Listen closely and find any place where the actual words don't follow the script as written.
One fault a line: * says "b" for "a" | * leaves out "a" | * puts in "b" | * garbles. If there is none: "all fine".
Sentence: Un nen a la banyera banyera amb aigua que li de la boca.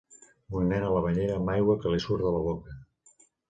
* leaves out "banyera"
* puts in "surt"